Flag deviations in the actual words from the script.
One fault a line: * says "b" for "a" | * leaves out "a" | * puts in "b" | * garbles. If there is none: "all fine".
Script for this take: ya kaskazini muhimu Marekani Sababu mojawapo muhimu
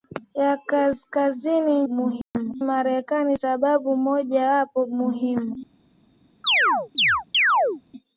all fine